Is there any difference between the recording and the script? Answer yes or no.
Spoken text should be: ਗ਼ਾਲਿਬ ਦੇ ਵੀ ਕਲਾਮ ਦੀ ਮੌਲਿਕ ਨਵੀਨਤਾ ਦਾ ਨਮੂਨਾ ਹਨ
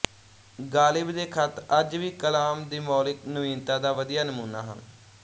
yes